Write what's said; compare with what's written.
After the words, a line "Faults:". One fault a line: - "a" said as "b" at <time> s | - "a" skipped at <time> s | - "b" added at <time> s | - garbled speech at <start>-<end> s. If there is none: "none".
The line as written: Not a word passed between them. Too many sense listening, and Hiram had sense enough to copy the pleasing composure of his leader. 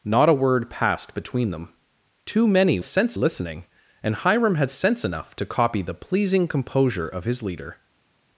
Not a word passed between them. Too many sense listening, and Hiram had sense enough to copy the pleasing composure of his leader.
Faults:
none